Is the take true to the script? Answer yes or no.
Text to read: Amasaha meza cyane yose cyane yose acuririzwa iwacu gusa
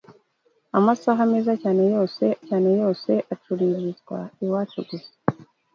yes